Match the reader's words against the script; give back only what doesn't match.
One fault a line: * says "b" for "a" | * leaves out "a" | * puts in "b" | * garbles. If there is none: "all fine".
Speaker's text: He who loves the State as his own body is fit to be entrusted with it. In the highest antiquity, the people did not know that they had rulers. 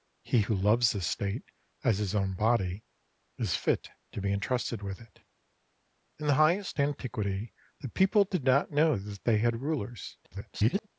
* garbles